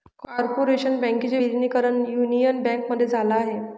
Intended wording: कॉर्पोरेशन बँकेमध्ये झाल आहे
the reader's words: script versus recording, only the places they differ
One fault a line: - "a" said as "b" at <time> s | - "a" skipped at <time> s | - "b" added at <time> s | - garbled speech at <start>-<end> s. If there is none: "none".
- "बँकेचे विलीनीकरण युनियन" added at 1.0 s